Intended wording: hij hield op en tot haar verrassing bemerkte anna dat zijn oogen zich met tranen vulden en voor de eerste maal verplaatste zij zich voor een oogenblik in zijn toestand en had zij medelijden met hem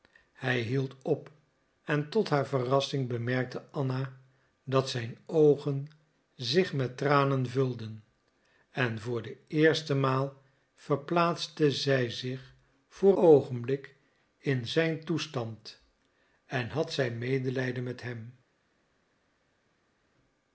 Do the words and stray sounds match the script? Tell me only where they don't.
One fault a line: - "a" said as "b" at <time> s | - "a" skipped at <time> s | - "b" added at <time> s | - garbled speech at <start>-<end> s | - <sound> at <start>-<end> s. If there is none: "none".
- "een" skipped at 13.2 s